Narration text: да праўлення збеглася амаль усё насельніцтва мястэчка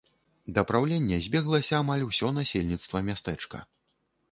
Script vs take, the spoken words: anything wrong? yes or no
no